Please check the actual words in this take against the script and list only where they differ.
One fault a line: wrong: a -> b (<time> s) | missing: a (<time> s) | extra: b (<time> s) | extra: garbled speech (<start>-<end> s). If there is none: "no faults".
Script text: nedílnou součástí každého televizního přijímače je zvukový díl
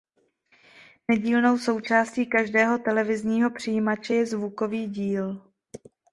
no faults